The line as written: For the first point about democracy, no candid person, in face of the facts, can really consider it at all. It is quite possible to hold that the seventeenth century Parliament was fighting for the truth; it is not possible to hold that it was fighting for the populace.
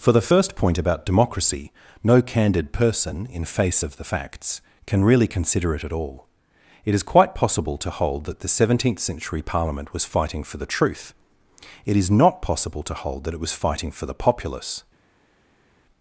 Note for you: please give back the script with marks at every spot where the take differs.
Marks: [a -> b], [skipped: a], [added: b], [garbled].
For the first point about democracy, no candid person, in face of the facts, can really consider it at all. It is quite possible to hold that the seventeenth century Parliament was fighting for the truth; it is not possible to hold that it was fighting for the populace.